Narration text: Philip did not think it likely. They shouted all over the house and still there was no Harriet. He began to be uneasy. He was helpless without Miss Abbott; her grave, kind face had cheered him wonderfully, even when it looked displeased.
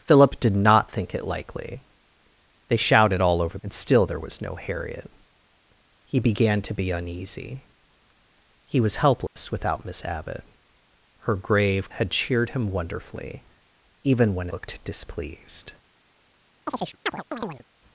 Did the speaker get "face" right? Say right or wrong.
wrong